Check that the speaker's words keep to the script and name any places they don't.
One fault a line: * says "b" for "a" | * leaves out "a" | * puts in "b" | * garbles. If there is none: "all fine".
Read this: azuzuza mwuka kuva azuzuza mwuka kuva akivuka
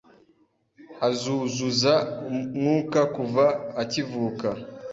* leaves out "azuzuza mwuka kuva"